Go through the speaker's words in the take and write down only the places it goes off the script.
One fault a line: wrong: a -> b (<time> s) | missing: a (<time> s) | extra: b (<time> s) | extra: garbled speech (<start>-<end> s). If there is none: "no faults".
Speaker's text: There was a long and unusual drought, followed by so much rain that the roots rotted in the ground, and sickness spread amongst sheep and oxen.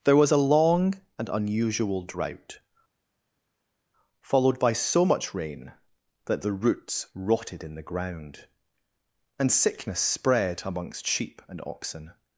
no faults